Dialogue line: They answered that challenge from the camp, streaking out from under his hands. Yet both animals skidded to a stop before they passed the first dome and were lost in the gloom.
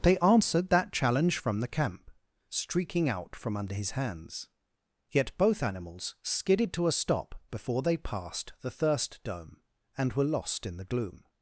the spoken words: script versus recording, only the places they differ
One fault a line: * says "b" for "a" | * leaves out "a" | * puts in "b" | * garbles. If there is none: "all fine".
* says "thirst" for "first"